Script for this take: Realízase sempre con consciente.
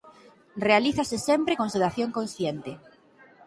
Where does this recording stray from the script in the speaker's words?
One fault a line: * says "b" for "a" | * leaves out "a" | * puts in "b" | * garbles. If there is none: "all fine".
* puts in "sedación"